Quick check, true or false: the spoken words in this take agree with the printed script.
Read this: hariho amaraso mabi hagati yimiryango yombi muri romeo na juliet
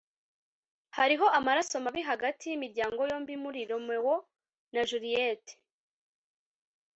true